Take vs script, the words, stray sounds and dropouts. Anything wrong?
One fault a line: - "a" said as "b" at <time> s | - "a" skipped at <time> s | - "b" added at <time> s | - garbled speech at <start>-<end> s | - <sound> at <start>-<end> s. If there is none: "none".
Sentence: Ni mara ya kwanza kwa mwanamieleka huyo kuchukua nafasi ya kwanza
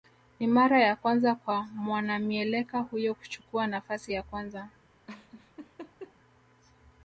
- laugh at 5.1-6.1 s